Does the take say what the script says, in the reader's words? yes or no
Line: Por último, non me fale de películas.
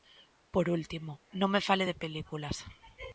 yes